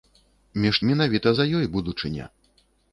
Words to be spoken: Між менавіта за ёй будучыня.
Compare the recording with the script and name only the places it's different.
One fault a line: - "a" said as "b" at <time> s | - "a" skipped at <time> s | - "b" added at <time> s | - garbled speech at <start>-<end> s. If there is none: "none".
none